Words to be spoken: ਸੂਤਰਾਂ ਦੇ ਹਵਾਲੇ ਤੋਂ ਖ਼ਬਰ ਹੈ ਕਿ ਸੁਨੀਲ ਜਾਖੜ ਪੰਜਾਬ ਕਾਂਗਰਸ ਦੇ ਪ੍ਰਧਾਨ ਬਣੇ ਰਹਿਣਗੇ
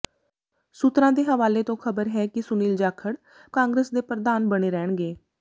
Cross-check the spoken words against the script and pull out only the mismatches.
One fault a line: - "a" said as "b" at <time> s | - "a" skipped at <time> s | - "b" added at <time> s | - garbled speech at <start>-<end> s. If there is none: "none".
- "ਪੰਜਾਬ" skipped at 3.1 s